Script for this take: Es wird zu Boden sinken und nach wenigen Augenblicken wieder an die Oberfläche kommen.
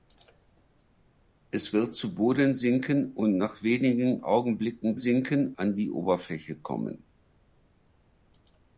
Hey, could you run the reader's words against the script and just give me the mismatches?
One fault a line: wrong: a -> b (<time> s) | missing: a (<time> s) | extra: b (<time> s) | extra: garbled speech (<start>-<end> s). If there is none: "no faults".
wrong: wieder -> sinken (5.0 s)